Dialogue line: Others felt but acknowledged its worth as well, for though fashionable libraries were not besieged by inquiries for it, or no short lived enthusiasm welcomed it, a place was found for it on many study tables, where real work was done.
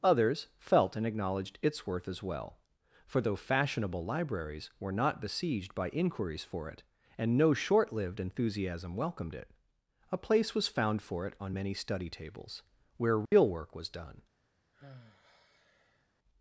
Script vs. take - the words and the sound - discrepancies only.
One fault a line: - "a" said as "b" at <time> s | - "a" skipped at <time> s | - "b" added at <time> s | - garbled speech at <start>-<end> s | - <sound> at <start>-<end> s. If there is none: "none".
- "but" said as "and" at 0.9 s
- "or" said as "and" at 7.2 s
- dropout at 13.3-13.3 s
- sigh at 14.7-16.1 s